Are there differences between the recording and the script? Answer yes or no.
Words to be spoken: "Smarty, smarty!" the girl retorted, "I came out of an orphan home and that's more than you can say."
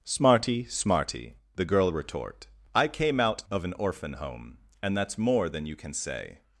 yes